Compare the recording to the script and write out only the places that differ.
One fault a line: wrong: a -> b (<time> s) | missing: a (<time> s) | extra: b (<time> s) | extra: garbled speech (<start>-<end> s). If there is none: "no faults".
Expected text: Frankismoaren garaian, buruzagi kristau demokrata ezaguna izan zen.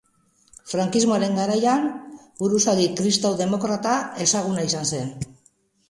no faults